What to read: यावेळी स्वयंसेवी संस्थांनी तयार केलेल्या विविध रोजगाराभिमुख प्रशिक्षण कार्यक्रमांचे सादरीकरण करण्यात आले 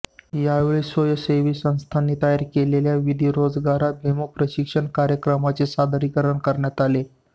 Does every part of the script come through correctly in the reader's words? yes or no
yes